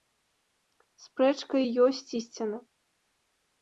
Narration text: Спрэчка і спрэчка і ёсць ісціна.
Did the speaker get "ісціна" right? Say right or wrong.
right